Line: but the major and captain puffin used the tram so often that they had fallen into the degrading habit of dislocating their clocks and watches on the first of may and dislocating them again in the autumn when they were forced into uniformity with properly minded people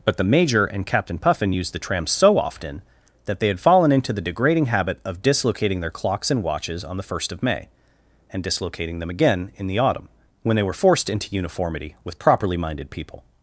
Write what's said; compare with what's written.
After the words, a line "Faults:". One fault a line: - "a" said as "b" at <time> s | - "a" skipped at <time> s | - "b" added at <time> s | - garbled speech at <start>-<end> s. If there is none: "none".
but the major and captain puffin used the tram so often that they had fallen into the degrading habit of dislocating their clocks and watches on the first of may and dislocating them again in the autumn when they were forced into uniformity with properly minded people
Faults:
none